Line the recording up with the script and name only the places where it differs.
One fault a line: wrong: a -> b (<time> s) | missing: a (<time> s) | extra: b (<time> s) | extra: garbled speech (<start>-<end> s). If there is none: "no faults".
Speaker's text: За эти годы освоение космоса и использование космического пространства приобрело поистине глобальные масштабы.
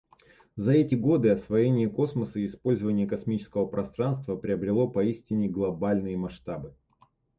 no faults